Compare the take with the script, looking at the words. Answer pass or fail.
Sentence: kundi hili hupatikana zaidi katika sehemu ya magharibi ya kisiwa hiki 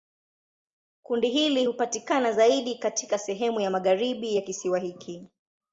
pass